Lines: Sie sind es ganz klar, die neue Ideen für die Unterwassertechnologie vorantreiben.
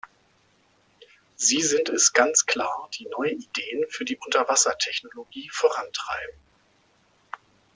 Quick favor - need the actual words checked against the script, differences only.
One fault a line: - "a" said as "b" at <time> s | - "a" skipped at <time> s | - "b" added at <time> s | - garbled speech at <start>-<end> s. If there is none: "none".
none